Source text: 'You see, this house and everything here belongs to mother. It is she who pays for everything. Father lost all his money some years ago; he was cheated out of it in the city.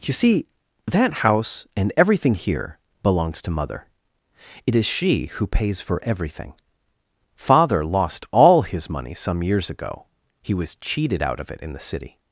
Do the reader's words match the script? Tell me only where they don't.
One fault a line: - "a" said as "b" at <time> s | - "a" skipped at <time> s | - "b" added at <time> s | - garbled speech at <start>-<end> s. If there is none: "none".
- "this" said as "that" at 0.9 s